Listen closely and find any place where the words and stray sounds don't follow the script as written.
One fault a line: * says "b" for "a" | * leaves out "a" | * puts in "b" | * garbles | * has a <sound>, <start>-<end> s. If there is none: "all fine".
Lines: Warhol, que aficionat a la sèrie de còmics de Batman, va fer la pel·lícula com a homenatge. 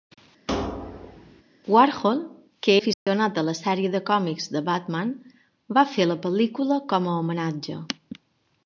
* has a thud, 0.5-1.4 s
* has a dropout, 2.9-3.1 s